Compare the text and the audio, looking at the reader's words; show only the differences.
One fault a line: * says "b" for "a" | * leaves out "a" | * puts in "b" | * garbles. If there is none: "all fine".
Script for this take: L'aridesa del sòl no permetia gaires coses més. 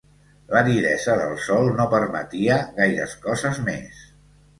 all fine